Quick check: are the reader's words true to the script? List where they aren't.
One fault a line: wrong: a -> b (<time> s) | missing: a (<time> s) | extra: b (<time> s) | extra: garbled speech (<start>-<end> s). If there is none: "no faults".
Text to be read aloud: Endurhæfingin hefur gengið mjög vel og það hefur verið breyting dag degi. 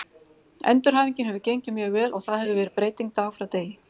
extra: frá (3.4 s)